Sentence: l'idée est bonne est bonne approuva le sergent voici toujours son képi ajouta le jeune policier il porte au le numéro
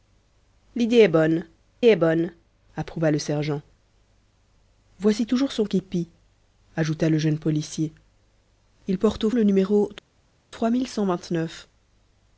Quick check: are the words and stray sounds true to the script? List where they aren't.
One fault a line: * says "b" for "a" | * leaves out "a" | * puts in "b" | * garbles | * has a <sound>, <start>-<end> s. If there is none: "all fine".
all fine